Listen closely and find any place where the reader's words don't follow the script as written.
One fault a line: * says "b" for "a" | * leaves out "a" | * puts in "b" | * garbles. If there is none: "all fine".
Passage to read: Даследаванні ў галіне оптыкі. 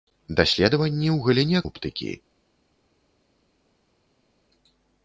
all fine